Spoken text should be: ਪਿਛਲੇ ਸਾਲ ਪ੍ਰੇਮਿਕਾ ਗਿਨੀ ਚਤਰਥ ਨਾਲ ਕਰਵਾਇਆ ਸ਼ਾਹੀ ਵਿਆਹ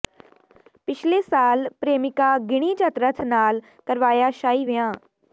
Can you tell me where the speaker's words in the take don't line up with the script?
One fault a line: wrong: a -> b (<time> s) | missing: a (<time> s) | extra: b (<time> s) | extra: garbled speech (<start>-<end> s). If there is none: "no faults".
no faults